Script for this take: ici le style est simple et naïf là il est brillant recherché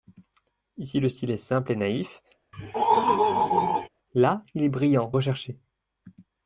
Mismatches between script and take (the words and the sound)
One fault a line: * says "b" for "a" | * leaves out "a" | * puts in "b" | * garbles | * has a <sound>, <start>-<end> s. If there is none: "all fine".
* has a throat clearing, 2.5-3.9 s